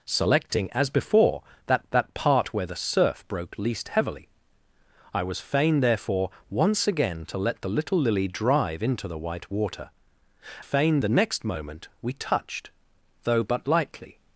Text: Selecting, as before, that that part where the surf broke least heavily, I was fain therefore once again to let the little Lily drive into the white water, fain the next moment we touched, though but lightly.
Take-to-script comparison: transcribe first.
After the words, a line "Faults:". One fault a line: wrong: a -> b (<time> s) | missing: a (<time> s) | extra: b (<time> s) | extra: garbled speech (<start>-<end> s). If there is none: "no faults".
Selecting, as before, that that part where the surf broke least heavily, I was fain therefore once again to let the little Lily drive into the white water, fain the next moment we touched, though but lightly.
Faults:
no faults